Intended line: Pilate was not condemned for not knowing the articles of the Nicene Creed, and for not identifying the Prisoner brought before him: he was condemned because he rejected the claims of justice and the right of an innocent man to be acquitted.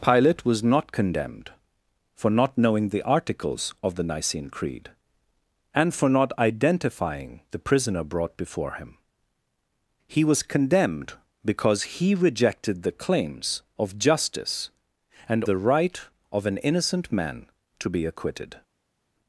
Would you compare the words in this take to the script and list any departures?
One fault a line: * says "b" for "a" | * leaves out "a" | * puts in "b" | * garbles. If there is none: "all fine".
all fine